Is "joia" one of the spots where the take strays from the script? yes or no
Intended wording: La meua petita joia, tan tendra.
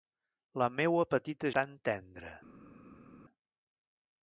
yes